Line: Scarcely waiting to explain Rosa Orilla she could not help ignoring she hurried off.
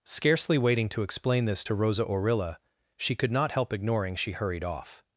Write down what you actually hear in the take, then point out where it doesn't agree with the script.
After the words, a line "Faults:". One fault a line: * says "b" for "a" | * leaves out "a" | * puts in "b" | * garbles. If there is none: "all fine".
Scarcely waiting to explain this to Rosa Orilla she could not help ignoring she hurried off.
Faults:
* puts in "this to"